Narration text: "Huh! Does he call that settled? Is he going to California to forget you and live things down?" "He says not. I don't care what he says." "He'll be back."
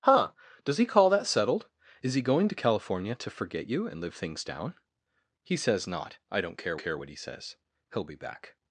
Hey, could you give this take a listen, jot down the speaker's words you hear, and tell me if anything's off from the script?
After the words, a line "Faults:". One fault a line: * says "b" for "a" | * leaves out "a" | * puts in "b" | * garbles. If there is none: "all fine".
"Huh! Does he call that settled? Is he going to California to forget you and live things down?" "He says not. I don't care care what he says." "He'll be back."
Faults:
* puts in "care"